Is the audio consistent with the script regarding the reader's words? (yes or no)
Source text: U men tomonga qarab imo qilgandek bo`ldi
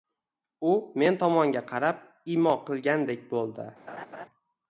yes